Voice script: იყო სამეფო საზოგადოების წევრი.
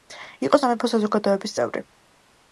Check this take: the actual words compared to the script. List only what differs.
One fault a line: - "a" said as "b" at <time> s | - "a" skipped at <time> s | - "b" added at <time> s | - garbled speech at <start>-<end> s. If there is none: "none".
none